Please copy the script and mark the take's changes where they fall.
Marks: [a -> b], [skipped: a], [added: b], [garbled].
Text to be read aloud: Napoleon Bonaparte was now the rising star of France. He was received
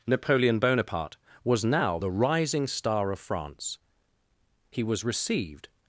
Napoleon Bonaparte was now the rising star of France. He was received